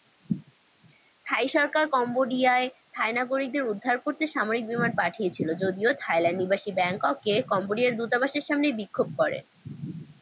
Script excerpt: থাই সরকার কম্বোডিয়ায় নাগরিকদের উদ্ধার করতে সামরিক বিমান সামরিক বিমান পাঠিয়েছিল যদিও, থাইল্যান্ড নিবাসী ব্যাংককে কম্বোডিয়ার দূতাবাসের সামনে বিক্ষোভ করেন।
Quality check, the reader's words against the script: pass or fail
fail